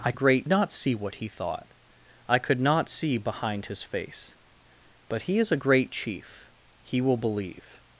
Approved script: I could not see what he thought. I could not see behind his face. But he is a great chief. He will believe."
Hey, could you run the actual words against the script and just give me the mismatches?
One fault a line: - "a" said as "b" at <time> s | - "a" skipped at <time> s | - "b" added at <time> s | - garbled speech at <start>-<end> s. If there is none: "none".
- "could" said as "great" at 0.1 s